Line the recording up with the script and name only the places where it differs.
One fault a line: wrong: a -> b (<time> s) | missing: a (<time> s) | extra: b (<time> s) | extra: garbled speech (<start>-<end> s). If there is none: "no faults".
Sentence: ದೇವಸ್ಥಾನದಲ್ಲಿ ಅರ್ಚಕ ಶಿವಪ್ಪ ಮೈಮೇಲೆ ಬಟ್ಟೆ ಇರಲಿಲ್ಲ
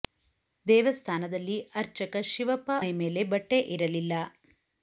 no faults